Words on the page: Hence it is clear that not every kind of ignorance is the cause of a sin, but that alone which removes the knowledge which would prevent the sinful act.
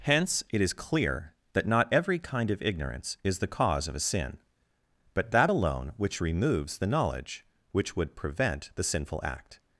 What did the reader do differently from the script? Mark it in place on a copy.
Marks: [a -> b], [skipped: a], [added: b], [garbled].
Hence it is clear that not every kind of ignorance is the cause of a sin, but that alone which removes the knowledge which would prevent the sinful act.